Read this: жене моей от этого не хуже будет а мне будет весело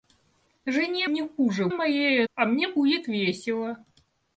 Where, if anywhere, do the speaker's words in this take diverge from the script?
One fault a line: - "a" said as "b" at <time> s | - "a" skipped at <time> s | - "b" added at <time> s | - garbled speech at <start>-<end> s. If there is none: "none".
- "моей от этого" skipped at 1.1 s
- "будет" said as "моей" at 1.7 s